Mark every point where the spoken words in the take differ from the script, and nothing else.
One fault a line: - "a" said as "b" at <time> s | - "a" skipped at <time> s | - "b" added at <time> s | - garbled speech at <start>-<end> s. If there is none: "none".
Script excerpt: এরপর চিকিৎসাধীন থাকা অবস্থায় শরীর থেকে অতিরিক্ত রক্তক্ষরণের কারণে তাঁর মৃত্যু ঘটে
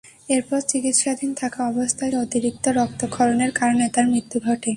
- "শরীর থেকে" skipped at 2.1 s